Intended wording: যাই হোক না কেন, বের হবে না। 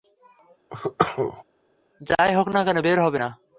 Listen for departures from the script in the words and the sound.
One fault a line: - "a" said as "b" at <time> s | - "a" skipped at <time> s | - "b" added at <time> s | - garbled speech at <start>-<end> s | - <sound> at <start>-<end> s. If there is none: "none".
- cough at 0.7-1.4 s